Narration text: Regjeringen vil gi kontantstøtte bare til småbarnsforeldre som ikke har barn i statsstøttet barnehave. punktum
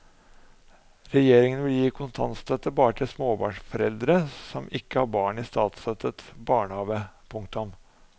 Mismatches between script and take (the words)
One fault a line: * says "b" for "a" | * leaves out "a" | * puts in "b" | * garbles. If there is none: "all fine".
all fine